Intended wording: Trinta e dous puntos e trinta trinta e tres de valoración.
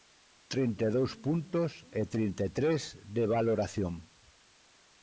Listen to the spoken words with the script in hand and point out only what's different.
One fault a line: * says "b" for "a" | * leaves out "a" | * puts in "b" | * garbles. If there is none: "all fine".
* leaves out "trinta"